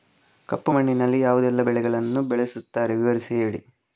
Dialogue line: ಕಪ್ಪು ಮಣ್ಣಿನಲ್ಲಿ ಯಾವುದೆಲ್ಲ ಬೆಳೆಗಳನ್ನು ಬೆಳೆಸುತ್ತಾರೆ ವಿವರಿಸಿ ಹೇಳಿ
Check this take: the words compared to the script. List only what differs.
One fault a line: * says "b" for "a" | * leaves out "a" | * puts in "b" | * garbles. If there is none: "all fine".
all fine